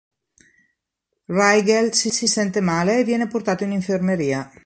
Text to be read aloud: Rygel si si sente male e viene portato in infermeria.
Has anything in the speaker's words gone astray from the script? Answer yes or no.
no